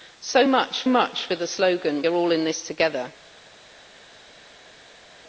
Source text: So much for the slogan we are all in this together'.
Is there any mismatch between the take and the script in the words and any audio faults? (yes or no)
yes